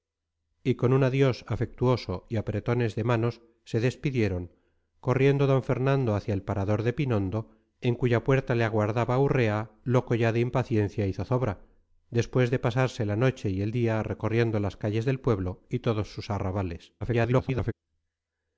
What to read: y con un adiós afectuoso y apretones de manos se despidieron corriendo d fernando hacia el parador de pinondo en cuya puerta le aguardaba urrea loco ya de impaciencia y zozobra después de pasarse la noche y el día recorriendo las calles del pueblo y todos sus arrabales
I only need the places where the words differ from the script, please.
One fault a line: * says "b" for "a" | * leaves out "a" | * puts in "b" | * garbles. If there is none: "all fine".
* garbles